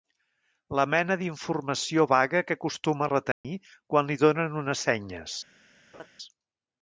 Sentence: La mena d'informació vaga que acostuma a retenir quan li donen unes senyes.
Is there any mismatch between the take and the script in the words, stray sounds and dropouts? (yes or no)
yes